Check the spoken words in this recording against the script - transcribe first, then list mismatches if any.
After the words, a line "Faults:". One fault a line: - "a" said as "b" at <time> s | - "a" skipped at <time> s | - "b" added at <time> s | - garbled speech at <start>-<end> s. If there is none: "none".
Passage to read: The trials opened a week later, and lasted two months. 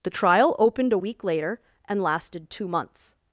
The trial opened a week later, and lasted two months.
Faults:
- "trials" said as "trial" at 0.1 s